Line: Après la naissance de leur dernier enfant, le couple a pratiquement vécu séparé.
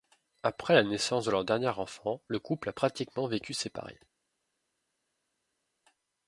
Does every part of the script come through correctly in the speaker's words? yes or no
yes